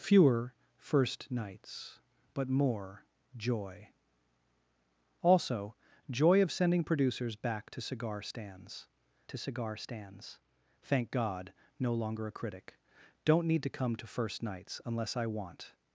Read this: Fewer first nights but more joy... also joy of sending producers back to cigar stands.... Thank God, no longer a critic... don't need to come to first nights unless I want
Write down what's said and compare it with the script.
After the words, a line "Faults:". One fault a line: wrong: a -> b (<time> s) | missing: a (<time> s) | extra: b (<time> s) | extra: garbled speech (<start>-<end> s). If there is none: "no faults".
Fewer first nights but more joy... also joy of sending producers back to cigar stands to cigar stands.... Thank God, no longer a critic... don't need to come to first nights unless I want
Faults:
extra: to cigar stands (9.3 s)